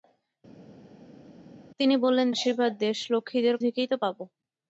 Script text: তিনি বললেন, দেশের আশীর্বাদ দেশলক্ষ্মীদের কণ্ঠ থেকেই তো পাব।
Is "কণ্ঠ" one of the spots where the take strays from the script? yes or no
yes